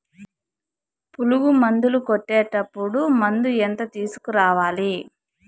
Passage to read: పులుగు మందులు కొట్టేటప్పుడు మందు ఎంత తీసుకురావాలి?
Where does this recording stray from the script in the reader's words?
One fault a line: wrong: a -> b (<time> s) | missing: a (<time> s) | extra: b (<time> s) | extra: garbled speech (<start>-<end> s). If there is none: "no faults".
no faults